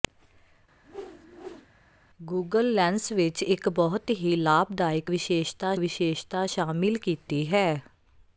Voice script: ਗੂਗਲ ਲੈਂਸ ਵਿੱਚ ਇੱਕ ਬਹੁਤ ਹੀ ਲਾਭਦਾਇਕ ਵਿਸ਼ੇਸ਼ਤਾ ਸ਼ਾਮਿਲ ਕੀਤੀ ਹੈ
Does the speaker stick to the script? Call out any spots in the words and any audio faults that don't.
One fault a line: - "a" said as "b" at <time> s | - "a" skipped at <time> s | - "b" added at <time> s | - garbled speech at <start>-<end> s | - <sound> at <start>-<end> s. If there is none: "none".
- whoosh at 0.8-1.7 s
- "ਵਿਸ਼ੇਸ਼ਤਾ" added at 5.8 s